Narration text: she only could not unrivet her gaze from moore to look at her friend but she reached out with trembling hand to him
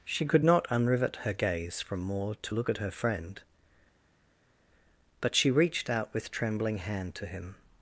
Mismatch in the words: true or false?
true